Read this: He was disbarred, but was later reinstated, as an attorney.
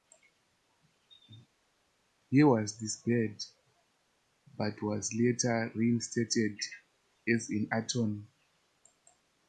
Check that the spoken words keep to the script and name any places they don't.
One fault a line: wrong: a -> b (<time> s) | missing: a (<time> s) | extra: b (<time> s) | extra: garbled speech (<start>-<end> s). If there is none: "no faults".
no faults